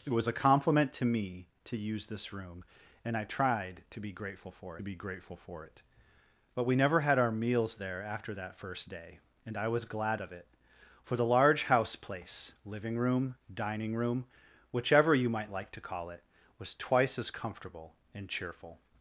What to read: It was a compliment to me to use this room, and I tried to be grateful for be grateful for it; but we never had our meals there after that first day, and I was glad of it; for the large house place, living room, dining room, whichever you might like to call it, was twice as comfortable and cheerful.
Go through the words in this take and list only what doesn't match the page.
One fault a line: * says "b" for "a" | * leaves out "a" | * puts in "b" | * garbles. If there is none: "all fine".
all fine